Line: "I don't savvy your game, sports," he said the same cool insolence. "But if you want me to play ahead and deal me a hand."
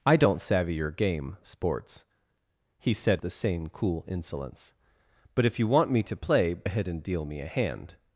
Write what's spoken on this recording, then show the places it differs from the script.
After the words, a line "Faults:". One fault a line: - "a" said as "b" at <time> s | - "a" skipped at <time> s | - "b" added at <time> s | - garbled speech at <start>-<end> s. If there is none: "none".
"I don't savvy your game, sports," he said the same cool insolence. "But if you want me to play ahead and deal me a hand."
Faults:
none